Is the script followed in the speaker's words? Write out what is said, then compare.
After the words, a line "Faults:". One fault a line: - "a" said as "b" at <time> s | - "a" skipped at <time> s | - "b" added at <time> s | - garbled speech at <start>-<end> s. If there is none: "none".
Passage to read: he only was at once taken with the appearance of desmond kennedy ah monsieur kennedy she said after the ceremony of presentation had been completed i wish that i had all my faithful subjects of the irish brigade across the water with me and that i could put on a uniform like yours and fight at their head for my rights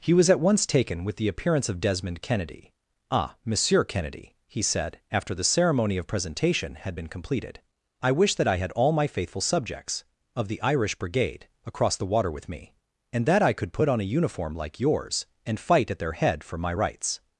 he was at once taken with the appearance of desmond kennedy ah monsieur kennedy he said after the ceremony of presentation had been completed i wish that i had all my faithful subjects of the irish brigade across the water with me and that i could put on a uniform like yours and fight at their head for my rights
Faults:
- "only" skipped at 0.1 s
- "she" said as "he" at 4.5 s